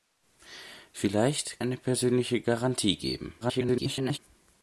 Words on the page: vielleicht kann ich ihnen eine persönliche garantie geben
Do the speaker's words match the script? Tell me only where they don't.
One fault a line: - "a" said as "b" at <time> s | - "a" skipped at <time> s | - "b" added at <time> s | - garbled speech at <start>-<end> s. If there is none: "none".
- "kann ich ihnen" skipped at 1.6 s
- garbled speech at 3.4-4.2 s